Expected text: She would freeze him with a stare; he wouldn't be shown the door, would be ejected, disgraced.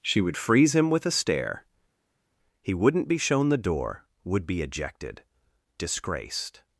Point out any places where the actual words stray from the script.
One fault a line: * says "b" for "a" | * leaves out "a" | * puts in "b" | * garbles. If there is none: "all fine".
all fine